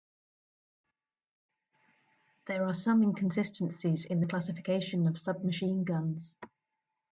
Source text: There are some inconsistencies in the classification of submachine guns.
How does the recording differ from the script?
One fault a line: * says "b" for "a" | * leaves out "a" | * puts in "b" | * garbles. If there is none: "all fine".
all fine